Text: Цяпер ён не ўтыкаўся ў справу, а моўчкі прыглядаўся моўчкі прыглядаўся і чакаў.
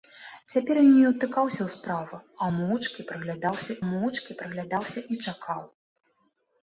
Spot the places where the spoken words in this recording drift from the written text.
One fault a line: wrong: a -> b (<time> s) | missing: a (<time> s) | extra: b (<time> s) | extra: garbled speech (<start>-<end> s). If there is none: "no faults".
no faults